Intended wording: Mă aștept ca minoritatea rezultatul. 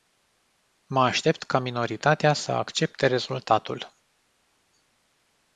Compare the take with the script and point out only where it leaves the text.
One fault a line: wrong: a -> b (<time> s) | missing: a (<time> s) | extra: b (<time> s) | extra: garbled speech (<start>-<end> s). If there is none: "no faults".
extra: să accepte (2.3 s)